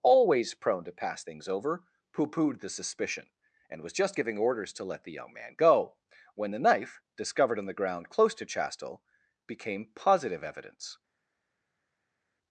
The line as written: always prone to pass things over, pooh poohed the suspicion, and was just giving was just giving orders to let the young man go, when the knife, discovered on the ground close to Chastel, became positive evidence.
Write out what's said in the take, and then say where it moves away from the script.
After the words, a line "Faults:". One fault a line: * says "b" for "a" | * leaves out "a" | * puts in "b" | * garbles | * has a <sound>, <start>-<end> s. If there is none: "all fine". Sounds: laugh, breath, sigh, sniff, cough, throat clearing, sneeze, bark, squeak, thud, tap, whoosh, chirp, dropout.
always prone to pass things over, pooh poohed the suspicion, and was just giving orders to let the young man go, when the knife, discovered on the ground close to Chastel, became positive evidence.
Faults:
* leaves out "was just giving"